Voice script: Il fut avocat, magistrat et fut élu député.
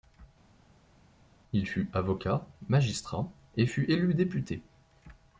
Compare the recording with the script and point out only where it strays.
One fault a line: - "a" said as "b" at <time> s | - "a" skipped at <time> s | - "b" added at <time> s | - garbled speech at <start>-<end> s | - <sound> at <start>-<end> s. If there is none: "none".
none